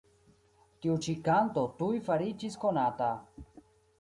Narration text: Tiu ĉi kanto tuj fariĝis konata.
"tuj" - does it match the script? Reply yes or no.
yes